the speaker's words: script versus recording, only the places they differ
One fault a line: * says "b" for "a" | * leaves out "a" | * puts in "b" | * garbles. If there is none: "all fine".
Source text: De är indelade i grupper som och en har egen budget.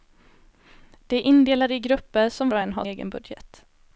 all fine